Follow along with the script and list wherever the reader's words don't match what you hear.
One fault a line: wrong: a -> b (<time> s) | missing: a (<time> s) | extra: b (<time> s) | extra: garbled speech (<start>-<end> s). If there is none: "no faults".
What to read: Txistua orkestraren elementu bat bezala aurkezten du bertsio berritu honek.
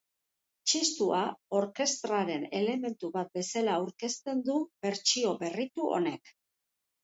no faults